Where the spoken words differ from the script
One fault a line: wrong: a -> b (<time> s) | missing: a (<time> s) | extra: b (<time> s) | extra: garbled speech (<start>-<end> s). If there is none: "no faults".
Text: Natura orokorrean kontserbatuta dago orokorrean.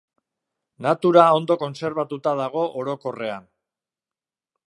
wrong: orokorrean -> ondo (1.4 s)